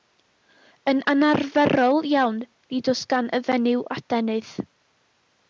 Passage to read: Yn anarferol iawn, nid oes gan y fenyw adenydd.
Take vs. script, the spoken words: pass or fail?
pass